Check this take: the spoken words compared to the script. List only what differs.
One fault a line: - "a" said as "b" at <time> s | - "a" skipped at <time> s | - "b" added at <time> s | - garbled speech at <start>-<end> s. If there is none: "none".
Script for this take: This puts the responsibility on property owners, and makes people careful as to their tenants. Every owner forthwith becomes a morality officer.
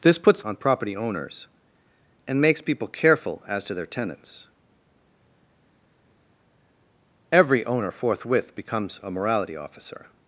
- "the responsibility" skipped at 0.4 s